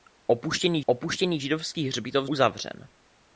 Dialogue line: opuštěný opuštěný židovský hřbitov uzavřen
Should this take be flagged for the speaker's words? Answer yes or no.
no